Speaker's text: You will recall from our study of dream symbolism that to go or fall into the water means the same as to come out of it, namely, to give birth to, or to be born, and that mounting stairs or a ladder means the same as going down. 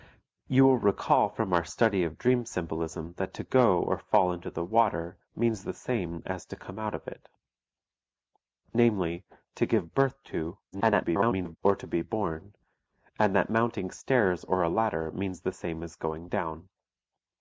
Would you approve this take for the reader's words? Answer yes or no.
no